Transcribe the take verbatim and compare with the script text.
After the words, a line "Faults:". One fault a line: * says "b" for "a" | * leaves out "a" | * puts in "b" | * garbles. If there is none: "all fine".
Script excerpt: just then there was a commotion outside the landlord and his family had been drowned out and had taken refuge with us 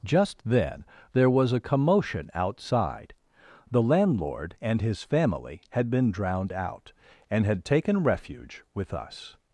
just then there was a commotion outside the landlord and his family had been drowned out and had taken refuge with us
Faults:
all fine